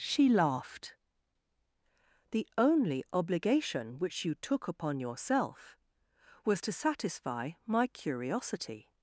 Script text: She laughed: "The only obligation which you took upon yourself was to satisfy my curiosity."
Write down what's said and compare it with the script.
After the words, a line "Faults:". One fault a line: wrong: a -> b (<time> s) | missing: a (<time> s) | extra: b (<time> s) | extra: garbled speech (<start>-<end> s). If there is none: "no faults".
She laughed: "The only obligation which you took upon yourself was to satisfy my curiosity."
Faults:
no faults